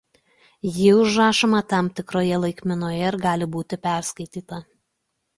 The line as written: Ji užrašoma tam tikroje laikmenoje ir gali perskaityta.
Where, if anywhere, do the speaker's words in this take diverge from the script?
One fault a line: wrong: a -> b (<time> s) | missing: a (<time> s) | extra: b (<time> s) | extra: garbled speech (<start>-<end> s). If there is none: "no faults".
extra: būti (3.6 s)